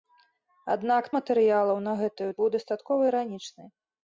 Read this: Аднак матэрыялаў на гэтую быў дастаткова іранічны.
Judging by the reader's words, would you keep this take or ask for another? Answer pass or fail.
pass